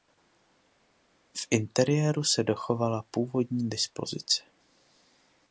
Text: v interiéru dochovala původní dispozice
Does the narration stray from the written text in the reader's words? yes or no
yes